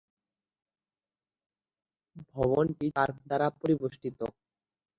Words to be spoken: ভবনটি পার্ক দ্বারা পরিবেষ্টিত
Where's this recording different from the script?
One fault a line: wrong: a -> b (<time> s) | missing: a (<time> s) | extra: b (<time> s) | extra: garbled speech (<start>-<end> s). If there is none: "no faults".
no faults